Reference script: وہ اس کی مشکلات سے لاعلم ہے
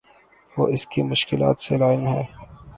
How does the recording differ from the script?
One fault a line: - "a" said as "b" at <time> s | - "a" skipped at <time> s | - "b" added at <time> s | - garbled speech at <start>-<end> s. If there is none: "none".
none